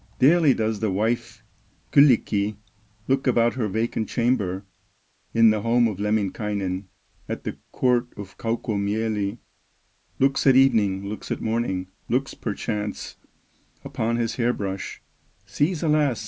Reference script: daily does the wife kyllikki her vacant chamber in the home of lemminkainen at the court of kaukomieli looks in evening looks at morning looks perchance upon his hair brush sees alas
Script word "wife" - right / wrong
right